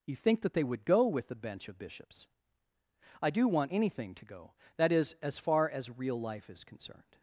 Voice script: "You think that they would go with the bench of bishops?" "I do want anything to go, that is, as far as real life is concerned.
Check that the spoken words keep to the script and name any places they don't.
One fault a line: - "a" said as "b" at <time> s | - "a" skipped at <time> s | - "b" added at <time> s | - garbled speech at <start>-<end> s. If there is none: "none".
none